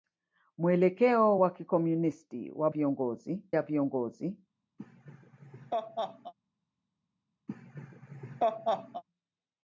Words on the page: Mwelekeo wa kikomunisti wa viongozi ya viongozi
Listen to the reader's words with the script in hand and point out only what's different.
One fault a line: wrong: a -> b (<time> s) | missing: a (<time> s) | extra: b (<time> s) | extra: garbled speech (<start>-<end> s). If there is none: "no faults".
no faults